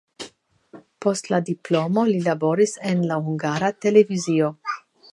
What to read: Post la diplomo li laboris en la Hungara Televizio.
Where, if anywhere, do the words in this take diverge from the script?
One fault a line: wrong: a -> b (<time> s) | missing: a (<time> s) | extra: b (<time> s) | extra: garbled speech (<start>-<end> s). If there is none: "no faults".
no faults